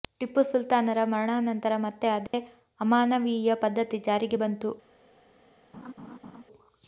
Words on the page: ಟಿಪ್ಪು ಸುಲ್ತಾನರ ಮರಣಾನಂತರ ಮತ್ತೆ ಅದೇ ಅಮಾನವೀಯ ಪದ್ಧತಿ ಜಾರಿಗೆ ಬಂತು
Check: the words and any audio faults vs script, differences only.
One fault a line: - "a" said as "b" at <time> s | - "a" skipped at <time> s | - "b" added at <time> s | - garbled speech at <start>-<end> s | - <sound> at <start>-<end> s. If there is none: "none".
- dropout at 2.3-2.3 s
- laugh at 5.7-6.4 s